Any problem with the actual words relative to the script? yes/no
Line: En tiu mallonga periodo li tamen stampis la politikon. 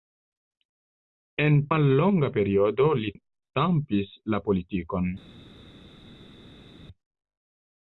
yes